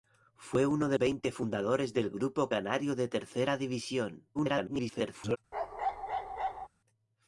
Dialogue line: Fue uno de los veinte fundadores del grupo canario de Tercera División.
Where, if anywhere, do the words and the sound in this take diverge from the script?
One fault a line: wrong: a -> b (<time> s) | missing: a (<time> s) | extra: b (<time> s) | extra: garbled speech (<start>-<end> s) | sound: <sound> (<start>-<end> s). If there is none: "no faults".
missing: los (1.0 s)
extra: garbled speech (4.3-5.4 s)
sound: bark (5.5-6.7 s)